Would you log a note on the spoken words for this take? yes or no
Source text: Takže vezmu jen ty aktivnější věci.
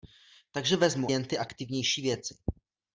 no